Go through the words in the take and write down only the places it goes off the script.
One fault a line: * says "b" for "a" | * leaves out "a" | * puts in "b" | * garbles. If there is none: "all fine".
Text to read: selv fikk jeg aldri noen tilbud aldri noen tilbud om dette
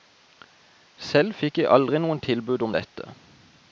* leaves out "aldri noen tilbud"